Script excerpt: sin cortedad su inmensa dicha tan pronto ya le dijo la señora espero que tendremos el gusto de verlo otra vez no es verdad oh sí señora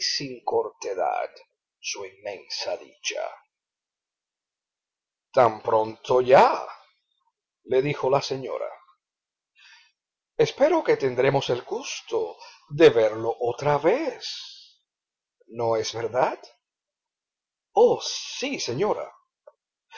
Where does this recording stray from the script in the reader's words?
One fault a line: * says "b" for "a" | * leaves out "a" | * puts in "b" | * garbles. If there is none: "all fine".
all fine